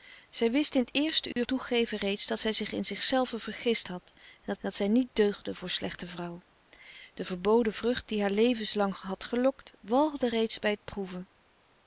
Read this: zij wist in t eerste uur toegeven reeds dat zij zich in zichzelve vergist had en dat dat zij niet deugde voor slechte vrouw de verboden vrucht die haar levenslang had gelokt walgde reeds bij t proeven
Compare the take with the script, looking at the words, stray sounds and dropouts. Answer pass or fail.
fail